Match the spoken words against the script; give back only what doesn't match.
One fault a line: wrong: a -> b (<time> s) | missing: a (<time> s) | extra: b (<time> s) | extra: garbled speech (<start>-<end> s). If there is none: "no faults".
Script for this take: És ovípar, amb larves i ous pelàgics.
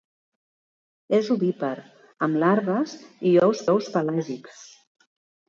extra: ous (3.8 s)